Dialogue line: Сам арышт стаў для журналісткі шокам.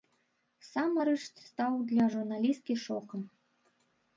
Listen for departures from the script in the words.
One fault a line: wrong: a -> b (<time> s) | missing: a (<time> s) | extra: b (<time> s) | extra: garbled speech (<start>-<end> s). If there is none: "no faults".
no faults